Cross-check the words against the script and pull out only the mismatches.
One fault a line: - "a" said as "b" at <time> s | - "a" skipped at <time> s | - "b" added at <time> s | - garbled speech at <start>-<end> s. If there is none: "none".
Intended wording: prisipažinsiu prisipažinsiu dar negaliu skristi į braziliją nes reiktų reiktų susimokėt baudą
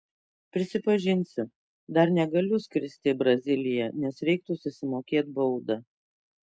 - "prisipažinsiu" skipped at 1.4 s
- "reiktų" skipped at 4.6 s